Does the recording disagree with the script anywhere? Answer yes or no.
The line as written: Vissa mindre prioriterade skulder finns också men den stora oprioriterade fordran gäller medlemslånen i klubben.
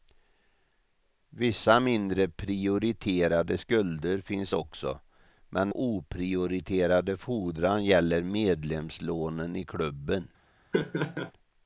yes